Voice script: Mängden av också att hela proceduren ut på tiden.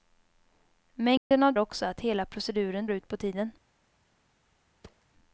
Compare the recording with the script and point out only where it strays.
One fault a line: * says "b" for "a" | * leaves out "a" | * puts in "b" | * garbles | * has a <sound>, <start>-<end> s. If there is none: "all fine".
* has a dropout, 1.2-1.3 s
* has a thud, 4.8-5.1 s